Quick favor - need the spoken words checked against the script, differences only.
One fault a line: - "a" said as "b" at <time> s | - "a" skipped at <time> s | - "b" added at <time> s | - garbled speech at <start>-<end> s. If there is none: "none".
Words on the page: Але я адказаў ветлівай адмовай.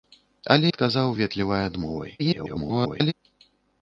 - "я" skipped at 0.7 s
- garbled speech at 2.2-3.1 s